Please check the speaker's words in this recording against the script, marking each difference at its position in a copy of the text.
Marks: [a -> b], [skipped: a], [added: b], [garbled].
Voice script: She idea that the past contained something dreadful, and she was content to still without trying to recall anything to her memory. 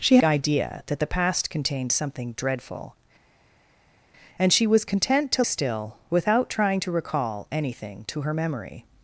She idea that the past contained something dreadful, and she was content to still without trying to recall anything to her memory.